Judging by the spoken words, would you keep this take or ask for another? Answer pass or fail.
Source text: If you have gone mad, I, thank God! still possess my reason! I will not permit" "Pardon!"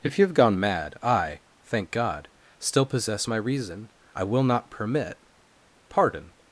pass